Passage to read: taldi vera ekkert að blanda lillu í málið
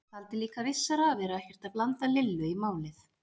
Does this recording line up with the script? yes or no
no